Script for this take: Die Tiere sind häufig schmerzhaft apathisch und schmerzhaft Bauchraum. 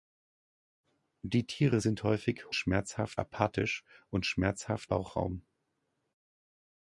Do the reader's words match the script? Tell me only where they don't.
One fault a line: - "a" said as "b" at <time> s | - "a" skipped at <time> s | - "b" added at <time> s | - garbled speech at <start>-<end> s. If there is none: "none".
none